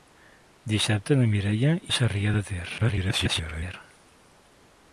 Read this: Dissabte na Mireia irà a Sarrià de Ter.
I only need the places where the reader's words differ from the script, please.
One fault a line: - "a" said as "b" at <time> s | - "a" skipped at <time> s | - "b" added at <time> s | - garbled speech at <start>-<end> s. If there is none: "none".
- "irà" skipped at 1.8 s
- garbled speech at 2.8-3.7 s